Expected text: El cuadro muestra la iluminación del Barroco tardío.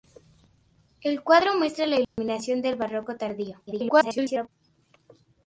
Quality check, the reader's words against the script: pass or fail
fail